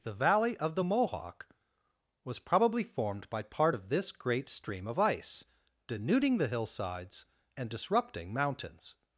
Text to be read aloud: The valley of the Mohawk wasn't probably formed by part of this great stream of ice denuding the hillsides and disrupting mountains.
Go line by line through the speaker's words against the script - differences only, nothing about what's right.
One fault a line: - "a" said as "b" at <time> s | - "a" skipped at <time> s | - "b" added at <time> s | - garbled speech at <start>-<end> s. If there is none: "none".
- "wasn't" said as "was" at 2.2 s